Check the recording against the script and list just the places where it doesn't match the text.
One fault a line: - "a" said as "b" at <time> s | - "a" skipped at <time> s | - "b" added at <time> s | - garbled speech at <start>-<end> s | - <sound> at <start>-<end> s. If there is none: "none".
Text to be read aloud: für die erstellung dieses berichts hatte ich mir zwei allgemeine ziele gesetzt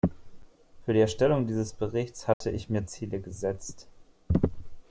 - dropout at 2.3-2.4 s
- "zwei allgemeine" skipped at 2.9 s